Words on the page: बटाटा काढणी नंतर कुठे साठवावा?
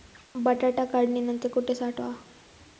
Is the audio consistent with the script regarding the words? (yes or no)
yes